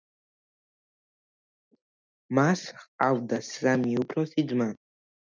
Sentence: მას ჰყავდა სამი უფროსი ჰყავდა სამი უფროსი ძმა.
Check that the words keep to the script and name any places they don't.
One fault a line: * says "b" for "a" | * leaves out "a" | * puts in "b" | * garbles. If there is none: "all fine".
* leaves out "ჰყავდა სამი უფროსი"